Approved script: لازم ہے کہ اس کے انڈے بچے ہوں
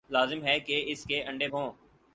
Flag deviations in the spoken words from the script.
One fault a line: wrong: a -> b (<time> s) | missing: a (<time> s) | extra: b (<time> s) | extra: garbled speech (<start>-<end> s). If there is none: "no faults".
missing: بچے (1.5 s)